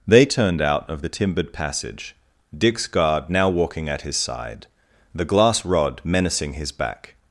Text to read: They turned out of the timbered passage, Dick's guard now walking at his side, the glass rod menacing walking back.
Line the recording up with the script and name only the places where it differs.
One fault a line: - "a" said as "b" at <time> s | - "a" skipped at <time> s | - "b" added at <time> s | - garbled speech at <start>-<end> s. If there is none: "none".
- "walking" said as "his" at 6.5 s